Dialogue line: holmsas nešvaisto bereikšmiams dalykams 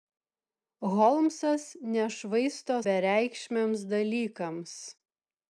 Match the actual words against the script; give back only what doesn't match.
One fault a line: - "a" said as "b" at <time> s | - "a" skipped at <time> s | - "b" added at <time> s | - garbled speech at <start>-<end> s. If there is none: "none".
none